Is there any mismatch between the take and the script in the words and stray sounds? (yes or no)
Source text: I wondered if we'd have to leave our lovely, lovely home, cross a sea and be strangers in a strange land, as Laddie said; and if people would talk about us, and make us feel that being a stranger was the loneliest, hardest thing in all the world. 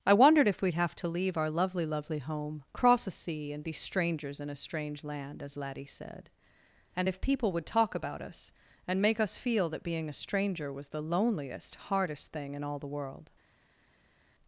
no